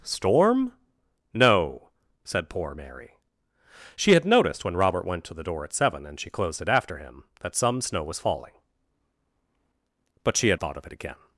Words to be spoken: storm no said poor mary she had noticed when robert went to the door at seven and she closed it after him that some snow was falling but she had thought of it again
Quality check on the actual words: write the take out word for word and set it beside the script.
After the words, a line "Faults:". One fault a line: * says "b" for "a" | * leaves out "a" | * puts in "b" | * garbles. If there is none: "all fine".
storm no said poor mary she had noticed when robert went to the door at seven and she closed it after him that some snow was falling but she had thought of it again
Faults:
all fine